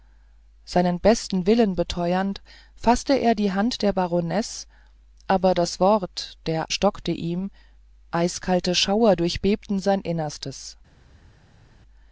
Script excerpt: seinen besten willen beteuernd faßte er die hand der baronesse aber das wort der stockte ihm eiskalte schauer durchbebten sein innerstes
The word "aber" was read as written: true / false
true